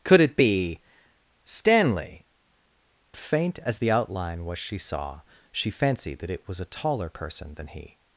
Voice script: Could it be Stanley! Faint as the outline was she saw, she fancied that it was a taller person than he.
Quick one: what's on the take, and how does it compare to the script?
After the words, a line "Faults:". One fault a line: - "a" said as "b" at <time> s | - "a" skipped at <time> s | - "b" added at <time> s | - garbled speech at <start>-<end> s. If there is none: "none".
Could it be Stanley! Faint as the outline was she saw, she fancied that it was a taller person than he.
Faults:
none